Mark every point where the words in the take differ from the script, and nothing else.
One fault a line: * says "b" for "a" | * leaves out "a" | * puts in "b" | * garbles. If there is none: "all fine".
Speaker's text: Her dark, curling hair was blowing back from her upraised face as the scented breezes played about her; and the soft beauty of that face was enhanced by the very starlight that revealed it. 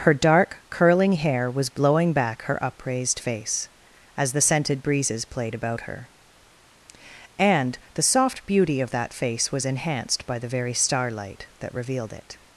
* leaves out "from"